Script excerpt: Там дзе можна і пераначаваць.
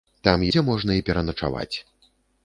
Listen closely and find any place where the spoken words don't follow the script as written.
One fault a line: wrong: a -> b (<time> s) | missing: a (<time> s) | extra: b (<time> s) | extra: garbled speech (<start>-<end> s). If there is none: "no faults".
no faults